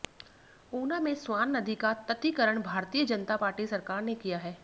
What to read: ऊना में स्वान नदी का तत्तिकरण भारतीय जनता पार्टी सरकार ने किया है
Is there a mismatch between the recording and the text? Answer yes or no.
no